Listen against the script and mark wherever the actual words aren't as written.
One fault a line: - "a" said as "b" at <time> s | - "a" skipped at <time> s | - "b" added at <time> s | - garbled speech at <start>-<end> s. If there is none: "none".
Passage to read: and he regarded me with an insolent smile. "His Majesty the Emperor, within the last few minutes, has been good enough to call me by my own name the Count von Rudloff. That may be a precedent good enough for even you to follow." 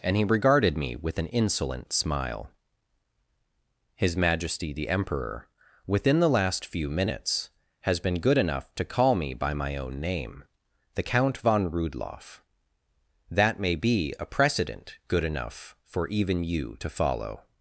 none